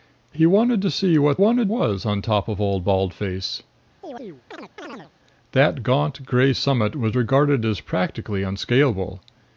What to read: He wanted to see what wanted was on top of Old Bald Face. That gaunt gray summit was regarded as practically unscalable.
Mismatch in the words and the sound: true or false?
true